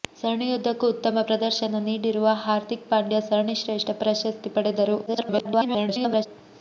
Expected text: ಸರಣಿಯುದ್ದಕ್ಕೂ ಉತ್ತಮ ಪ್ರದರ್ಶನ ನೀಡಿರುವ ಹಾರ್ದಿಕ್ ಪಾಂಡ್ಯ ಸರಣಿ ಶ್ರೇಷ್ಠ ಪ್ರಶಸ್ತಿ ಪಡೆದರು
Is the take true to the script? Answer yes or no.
no